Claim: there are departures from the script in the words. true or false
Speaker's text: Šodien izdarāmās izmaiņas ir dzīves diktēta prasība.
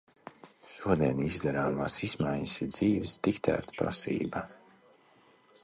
false